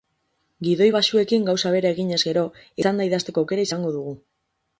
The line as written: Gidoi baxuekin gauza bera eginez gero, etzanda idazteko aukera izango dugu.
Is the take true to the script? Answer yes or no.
yes